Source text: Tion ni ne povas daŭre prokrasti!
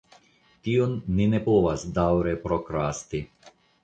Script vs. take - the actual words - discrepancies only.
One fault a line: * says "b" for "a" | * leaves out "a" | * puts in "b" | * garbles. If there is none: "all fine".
all fine